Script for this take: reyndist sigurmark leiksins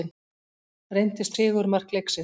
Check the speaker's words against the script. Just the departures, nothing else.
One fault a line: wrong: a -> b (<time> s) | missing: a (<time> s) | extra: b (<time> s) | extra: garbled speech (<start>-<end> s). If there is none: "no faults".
no faults